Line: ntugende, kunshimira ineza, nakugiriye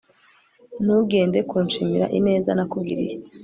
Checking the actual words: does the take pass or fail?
pass